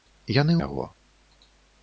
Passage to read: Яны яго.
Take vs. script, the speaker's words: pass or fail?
pass